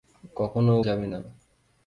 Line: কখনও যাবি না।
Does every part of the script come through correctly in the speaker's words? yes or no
yes